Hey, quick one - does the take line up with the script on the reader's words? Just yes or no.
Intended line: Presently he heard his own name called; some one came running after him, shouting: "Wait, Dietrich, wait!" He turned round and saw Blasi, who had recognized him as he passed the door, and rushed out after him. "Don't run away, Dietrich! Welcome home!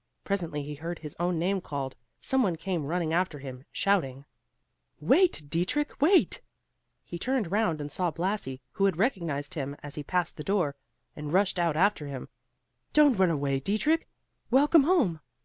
yes